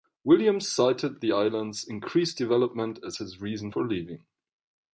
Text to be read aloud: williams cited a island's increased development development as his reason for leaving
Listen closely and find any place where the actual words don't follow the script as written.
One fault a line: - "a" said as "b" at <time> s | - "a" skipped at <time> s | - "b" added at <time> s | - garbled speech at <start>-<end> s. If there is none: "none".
- "a" said as "the" at 1.2 s
- "development" skipped at 3.0 s